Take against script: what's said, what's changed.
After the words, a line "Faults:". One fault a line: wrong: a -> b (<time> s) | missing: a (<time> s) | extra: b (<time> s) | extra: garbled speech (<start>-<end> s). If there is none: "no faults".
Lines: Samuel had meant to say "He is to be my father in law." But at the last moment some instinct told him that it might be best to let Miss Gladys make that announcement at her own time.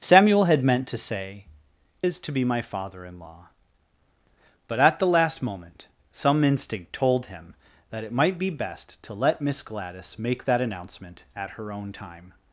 Samuel had meant to say "Is to be my father in law." But at the last moment some instinct told him that it might be best to let Miss Gladys make that announcement at her own time.
Faults:
missing: He (1.4 s)